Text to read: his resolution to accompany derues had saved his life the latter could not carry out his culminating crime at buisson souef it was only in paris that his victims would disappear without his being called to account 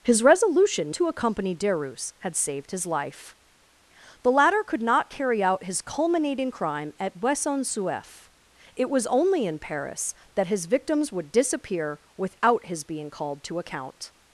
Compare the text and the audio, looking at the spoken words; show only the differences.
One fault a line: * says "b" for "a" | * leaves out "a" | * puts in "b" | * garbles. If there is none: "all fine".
all fine